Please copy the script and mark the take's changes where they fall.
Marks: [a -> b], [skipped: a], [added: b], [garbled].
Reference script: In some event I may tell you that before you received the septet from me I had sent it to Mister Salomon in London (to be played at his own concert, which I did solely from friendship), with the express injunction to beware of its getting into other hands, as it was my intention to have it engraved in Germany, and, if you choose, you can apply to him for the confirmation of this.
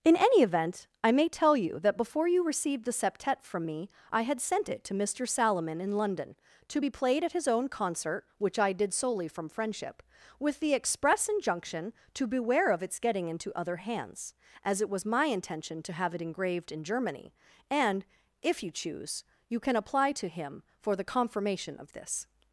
In [some -> any] event I may tell you that before you received the septet from me I had sent it to Mister Salomon in London (to be played at his own concert, which I did solely from friendship), with the express injunction to beware of its getting into other hands, as it was my intention to have it engraved in Germany, and, if you choose, you can apply to him for the confirmation of this.